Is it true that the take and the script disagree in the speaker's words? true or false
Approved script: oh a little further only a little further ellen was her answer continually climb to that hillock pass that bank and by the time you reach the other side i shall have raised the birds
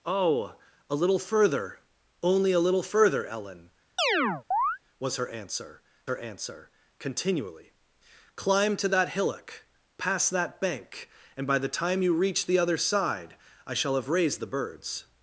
true